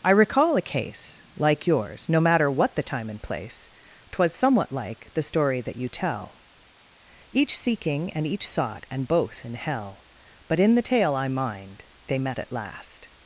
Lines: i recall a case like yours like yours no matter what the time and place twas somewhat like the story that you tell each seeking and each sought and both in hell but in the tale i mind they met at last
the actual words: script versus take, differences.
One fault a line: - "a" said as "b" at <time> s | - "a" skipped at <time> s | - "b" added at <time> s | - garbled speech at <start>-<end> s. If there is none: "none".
- "like yours" skipped at 2.1 s